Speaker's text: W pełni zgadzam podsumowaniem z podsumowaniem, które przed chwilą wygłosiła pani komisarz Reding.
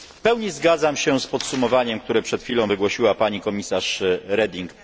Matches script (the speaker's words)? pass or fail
fail